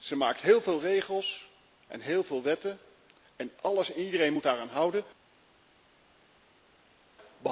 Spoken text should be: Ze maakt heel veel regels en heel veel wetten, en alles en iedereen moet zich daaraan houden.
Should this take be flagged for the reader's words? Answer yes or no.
yes